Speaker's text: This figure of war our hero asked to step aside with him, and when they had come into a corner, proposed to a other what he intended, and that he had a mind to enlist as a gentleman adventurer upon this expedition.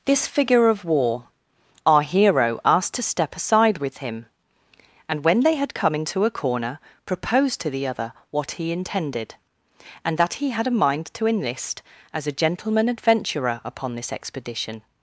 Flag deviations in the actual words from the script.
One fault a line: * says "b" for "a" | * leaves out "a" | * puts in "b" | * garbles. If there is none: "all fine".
* says "the" for "a"